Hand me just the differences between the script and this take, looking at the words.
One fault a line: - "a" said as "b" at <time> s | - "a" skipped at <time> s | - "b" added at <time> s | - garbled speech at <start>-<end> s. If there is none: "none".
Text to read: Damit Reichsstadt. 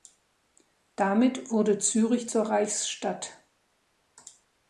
- "wurde Zürich zur" added at 1.5 s